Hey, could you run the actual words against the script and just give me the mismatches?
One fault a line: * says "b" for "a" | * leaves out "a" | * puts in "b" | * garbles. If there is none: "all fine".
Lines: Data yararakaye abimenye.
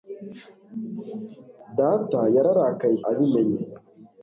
all fine